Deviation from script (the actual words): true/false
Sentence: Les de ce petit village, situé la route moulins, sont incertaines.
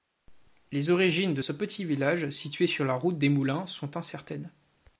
true